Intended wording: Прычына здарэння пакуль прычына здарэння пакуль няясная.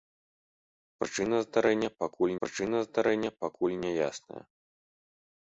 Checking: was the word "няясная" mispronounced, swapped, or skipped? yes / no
no